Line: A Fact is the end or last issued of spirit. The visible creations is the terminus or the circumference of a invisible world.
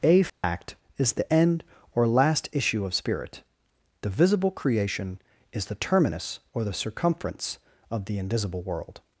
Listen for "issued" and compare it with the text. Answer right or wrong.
wrong